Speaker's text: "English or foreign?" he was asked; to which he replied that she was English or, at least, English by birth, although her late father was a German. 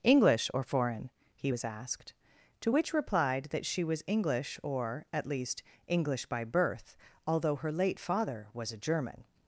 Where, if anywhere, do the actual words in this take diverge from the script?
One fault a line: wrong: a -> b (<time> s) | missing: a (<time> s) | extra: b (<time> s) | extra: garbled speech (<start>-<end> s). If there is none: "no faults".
missing: he (2.9 s)